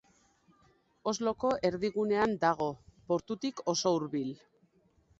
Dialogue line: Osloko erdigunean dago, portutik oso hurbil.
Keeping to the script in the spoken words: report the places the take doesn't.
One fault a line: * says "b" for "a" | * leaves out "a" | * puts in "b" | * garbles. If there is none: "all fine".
all fine